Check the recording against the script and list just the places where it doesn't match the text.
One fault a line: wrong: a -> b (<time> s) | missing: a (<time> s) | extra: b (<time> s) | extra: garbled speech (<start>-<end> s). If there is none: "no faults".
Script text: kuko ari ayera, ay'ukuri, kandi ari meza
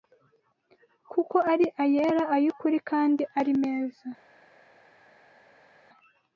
no faults